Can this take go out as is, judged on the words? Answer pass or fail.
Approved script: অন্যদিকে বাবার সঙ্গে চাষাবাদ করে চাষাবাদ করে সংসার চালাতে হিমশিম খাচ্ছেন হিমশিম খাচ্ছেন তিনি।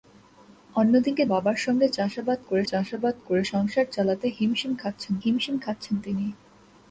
pass